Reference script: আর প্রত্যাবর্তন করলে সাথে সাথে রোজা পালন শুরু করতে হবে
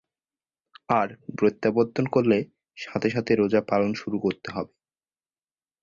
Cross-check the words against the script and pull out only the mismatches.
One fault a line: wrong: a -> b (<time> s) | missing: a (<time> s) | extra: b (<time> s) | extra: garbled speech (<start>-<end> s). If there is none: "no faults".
no faults